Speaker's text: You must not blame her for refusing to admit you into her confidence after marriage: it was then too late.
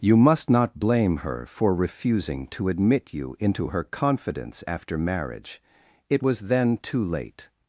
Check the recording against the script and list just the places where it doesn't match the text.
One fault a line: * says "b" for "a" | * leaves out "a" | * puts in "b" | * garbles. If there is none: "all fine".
all fine